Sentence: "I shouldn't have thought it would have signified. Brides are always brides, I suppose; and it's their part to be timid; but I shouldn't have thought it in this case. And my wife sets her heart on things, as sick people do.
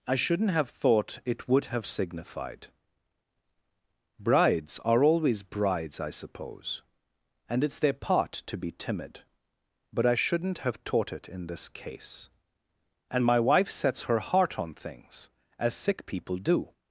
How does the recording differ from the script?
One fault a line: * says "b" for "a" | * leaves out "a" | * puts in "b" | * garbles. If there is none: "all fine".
* says "taught" for "thought"